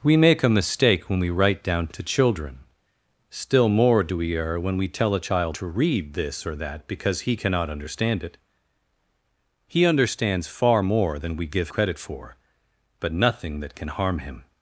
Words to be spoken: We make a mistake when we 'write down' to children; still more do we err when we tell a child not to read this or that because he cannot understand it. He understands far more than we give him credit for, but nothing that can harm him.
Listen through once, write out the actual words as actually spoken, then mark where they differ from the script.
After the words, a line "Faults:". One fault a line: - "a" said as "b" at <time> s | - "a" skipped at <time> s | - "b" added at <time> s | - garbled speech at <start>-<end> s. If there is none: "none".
We make a mistake when we 'write down' to children; still more do we err when we tell a child to read this or that because he cannot understand it. He understands far more than we give credit for, but nothing that can harm him.
Faults:
- "not" skipped at 5.5 s
- "him" skipped at 11.7 s